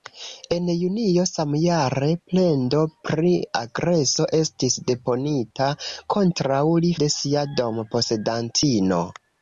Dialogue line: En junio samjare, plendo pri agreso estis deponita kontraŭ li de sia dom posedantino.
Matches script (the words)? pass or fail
pass